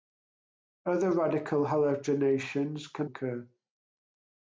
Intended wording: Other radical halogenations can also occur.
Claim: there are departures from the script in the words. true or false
true